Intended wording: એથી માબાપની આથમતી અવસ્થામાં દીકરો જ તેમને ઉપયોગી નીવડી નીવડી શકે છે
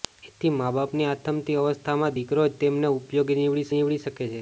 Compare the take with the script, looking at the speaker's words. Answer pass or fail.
pass